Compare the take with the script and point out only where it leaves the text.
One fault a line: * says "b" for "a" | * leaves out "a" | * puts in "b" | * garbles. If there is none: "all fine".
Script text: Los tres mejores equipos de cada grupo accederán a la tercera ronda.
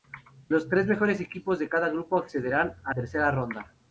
* leaves out "la"